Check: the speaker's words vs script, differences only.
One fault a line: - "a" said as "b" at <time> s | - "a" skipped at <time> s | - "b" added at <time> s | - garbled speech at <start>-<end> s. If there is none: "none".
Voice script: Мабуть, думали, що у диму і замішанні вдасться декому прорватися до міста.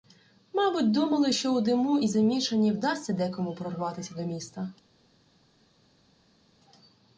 none